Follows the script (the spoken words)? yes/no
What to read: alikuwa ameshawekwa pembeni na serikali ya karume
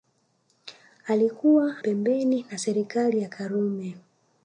no